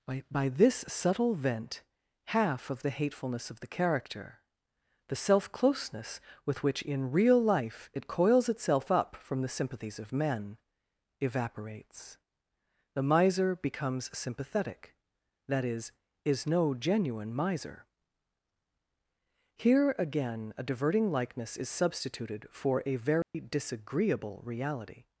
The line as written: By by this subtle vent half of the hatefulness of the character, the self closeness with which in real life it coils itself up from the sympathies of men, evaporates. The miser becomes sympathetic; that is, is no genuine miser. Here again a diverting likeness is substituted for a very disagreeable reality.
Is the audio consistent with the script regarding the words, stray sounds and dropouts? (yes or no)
no